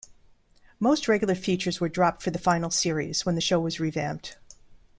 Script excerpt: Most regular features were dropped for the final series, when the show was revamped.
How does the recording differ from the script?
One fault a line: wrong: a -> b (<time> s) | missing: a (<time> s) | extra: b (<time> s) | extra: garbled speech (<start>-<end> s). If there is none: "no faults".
no faults